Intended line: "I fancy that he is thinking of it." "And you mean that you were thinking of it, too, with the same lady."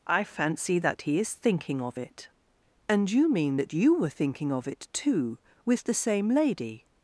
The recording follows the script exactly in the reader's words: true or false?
true